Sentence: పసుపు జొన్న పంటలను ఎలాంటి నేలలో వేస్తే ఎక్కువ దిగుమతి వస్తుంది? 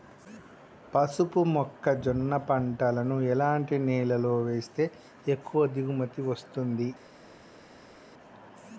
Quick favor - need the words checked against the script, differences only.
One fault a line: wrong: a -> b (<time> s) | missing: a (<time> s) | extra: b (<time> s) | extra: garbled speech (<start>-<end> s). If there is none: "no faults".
extra: మొక్క (1.5 s)